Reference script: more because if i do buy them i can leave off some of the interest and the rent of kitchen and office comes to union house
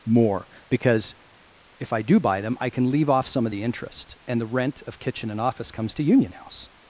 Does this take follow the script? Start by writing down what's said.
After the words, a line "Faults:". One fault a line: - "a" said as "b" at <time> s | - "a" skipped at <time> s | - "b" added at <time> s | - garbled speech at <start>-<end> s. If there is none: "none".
more because if i do buy them i can leave off some of the interest and the rent of kitchen and office comes to union house
Faults:
none